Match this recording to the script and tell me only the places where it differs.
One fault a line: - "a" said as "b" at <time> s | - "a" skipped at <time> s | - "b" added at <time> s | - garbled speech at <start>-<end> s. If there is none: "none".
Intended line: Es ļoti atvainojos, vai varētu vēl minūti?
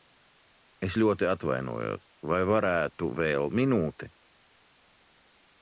none